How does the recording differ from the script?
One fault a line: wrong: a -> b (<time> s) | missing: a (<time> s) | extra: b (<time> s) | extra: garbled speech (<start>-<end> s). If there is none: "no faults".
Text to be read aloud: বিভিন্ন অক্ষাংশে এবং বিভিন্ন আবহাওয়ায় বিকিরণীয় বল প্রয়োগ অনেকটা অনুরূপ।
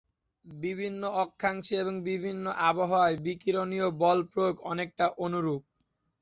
no faults